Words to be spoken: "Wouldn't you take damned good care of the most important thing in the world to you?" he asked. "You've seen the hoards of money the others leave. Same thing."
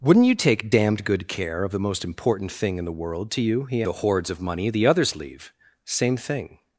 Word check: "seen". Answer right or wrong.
wrong